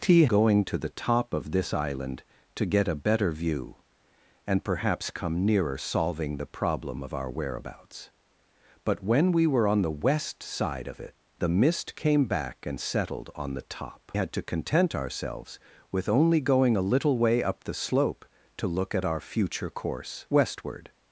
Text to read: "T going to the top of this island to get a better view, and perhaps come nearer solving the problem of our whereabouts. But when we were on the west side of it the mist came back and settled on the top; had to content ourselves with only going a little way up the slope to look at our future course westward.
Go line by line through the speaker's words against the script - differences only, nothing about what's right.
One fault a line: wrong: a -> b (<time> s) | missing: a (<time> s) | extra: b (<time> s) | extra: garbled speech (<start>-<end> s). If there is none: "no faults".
no faults